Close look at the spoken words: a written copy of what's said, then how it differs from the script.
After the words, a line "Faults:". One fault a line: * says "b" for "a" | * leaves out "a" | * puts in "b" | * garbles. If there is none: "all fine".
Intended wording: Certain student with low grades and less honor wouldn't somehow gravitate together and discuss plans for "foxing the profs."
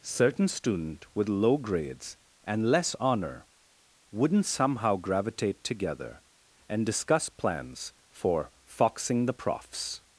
Certain student with low grades and less honor wouldn't somehow gravitate together and discuss plans for "foxing the profs."
Faults:
all fine